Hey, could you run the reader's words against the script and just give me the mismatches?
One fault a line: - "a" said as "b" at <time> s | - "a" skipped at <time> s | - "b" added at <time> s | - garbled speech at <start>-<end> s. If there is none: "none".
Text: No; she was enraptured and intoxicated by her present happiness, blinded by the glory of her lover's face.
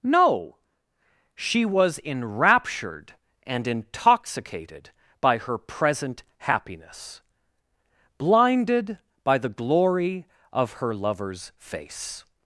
none